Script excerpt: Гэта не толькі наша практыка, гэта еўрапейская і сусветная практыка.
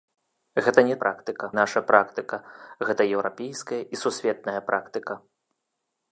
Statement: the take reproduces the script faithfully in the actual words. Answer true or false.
false